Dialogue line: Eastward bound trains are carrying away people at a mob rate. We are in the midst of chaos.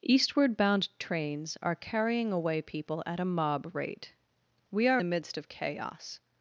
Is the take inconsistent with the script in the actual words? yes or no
yes